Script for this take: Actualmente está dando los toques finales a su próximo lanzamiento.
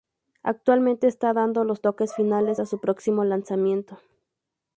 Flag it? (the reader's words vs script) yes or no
no